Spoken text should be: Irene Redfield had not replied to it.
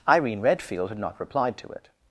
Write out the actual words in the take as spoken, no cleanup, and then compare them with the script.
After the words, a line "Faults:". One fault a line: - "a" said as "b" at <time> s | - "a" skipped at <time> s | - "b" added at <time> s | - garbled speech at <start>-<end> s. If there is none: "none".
Irene Redfield had not replied to it.
Faults:
none